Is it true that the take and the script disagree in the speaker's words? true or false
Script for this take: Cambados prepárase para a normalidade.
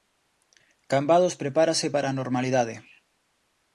false